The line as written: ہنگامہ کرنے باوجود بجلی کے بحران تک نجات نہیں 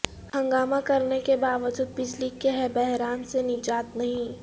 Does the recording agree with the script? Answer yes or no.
no